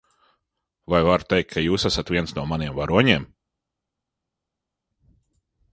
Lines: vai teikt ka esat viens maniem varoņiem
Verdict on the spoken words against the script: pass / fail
fail